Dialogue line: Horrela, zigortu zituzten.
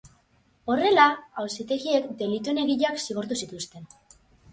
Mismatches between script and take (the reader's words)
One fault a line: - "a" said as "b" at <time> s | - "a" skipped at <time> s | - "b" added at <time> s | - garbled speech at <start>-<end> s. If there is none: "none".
- "auzitegiek delituen egileak" added at 1.4 s